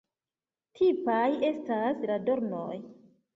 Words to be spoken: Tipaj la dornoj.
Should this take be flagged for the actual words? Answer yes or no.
yes